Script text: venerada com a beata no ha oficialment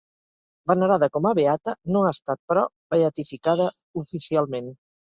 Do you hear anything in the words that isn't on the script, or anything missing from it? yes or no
yes